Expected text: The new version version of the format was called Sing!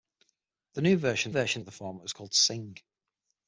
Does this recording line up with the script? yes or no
yes